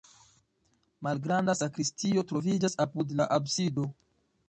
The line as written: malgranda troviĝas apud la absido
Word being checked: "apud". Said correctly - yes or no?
yes